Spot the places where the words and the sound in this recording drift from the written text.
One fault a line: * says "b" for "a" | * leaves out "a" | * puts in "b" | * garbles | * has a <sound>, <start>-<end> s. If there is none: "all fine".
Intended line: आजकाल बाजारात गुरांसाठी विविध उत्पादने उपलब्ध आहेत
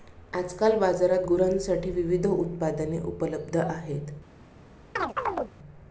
* has a chirp, 5.0-5.5 s